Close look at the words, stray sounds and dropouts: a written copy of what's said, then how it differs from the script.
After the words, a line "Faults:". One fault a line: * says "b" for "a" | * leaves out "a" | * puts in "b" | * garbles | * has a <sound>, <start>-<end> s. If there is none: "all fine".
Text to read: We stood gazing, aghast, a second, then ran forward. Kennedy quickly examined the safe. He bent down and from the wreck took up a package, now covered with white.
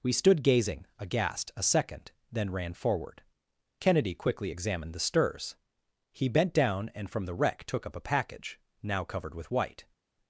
We stood gazing, aghast, a second, then ran forward. Kennedy quickly examined the stirs. He bent down and from the wreck took up a package, now covered with white.
Faults:
* says "stirs" for "safe"